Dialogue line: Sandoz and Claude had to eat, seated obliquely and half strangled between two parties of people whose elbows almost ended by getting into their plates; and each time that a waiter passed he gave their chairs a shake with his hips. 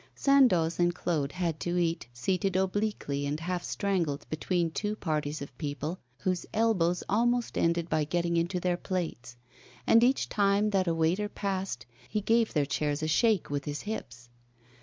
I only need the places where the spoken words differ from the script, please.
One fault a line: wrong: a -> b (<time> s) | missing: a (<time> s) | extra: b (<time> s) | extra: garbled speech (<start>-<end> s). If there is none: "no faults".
no faults